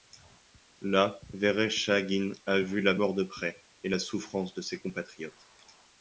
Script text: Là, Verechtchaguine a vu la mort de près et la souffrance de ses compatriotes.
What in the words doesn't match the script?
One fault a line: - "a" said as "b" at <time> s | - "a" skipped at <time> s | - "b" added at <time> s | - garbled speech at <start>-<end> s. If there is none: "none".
none